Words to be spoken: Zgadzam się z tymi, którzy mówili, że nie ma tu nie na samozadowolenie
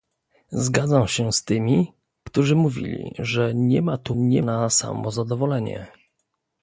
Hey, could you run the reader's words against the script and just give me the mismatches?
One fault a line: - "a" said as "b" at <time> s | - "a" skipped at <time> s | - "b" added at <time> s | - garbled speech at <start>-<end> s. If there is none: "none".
none